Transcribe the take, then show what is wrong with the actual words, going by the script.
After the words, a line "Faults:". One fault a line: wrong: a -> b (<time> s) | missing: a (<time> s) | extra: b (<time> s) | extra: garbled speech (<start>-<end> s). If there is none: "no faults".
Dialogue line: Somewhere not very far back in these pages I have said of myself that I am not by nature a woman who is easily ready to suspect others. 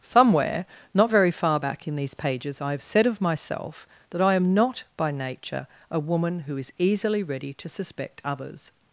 Somewhere not very far back in these pages I have said of myself that I am not by nature a woman who is easily ready to suspect others.
Faults:
no faults